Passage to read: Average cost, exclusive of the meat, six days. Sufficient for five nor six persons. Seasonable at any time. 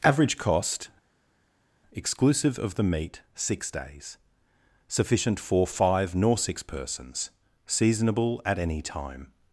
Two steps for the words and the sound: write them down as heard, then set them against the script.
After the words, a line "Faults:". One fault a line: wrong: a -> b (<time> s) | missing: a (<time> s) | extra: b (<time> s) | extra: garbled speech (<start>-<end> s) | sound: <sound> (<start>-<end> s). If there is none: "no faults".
Average cost, exclusive of the meat, six days. Sufficient for five nor six persons. Seasonable at any time.
Faults:
no faults